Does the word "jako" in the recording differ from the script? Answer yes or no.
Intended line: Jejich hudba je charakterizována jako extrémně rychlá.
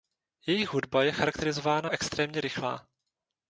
yes